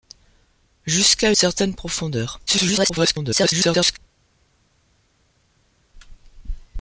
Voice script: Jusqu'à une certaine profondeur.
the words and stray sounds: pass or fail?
fail